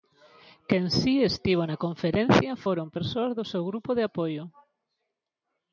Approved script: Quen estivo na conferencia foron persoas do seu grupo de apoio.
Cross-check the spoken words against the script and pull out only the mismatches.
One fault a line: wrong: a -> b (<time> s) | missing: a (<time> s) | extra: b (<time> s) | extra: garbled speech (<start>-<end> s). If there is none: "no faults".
extra: si (1.0 s)